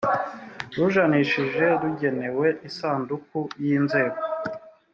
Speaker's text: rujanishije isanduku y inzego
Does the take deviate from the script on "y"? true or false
false